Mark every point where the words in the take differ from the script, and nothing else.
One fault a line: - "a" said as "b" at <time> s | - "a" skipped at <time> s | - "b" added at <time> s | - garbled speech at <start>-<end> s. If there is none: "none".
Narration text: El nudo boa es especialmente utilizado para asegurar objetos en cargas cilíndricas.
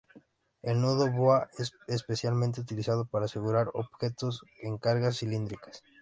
none